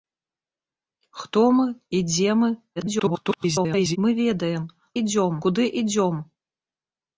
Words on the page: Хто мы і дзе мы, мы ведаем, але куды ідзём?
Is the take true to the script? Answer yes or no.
no